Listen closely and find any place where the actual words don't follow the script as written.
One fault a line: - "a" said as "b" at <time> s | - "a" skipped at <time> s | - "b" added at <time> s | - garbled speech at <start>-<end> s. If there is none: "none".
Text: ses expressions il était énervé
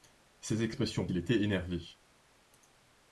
none